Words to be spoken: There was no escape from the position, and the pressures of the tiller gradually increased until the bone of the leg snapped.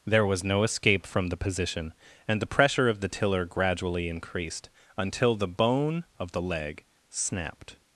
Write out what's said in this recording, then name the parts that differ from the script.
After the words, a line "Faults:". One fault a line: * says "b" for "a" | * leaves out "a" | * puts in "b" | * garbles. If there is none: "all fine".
There was no escape from the position, and the pressure of the tiller gradually increased until the bone of the leg snapped.
Faults:
* says "pressure" for "pressures"